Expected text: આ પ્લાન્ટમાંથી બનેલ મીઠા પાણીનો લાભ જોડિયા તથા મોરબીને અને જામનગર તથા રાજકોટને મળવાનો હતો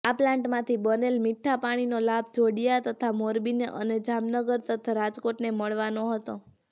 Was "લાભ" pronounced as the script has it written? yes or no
yes